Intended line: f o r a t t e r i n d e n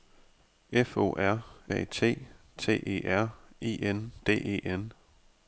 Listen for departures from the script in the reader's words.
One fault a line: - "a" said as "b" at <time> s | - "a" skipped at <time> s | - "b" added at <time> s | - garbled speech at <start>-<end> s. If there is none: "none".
none